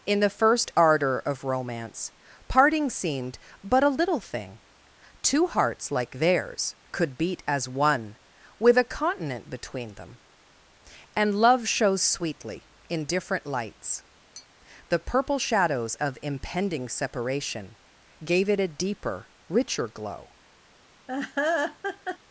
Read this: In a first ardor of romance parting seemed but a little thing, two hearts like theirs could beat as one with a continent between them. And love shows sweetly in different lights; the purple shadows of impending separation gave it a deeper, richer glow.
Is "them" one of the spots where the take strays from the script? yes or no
no